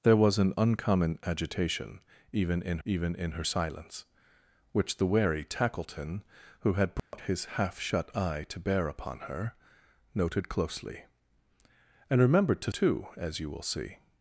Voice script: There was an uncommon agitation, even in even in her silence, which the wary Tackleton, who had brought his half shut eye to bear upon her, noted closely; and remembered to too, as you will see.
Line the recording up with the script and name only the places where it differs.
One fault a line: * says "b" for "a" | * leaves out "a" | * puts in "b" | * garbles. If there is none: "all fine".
all fine